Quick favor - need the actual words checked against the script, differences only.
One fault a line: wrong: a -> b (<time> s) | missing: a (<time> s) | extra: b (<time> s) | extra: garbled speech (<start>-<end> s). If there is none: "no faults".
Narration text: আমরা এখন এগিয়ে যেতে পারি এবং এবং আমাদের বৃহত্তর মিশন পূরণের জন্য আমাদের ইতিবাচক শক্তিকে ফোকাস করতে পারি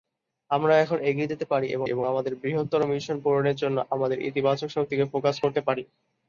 no faults